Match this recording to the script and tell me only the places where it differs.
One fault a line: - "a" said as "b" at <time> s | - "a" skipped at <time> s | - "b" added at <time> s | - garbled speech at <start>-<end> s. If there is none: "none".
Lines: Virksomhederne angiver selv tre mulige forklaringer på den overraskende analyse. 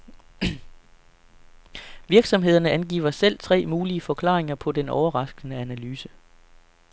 none